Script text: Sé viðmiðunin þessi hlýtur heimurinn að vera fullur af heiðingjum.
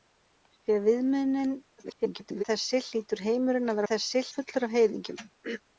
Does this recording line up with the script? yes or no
no